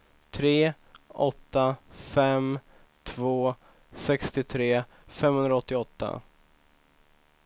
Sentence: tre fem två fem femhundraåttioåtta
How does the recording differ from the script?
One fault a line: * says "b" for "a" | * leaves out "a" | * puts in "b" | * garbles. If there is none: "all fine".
* puts in "åtta"
* says "sextiotre" for "fem"